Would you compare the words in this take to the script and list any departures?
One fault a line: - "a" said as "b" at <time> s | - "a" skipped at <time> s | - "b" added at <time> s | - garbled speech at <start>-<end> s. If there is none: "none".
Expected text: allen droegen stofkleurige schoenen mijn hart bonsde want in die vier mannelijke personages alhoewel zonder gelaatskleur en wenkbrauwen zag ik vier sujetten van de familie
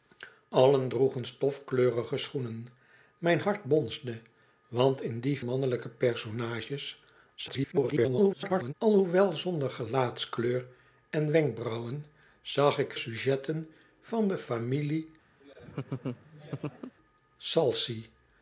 - "vier" skipped at 5.4 s
- garbled speech at 7.4-8.7 s
- "vier" skipped at 12.9 s